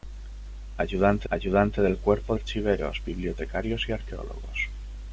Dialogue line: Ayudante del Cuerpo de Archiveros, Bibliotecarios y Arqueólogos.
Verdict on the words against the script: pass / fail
fail